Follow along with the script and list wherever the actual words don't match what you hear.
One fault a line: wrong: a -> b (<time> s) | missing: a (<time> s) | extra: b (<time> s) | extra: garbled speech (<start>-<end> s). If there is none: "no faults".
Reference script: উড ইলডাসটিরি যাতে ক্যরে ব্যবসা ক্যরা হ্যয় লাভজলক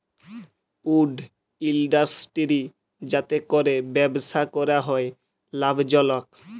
no faults